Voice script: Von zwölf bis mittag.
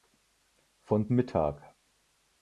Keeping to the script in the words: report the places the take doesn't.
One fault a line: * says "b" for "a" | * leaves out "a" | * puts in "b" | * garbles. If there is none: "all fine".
* leaves out "zwölf bis"